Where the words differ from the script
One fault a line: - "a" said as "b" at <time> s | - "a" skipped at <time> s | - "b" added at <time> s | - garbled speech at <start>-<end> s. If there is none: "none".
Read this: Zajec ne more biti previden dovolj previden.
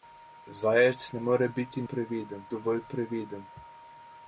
none